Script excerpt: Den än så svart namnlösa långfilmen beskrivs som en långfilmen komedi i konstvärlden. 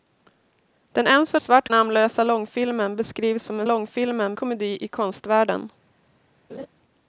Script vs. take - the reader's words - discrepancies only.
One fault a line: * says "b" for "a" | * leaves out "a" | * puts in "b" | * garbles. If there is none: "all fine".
all fine